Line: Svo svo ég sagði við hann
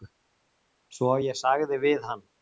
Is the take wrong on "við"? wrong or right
right